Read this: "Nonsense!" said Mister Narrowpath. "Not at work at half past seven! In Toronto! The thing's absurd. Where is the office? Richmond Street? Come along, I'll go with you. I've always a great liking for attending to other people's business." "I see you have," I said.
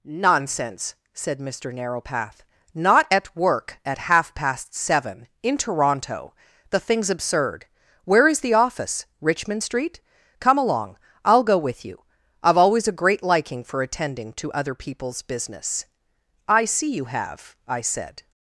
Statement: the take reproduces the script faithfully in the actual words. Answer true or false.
true